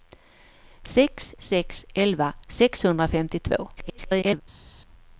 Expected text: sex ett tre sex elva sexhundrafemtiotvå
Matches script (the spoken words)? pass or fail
fail